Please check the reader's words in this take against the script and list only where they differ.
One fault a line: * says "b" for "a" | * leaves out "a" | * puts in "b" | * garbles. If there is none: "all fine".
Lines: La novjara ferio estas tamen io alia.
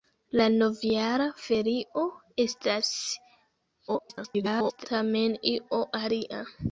* garbles